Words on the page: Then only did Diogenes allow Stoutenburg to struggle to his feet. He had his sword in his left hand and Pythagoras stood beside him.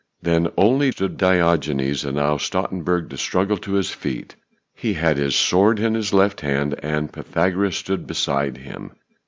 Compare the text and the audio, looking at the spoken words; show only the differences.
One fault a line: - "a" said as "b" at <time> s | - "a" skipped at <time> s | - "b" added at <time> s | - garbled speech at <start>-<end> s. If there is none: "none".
- "did" said as "stood" at 0.9 s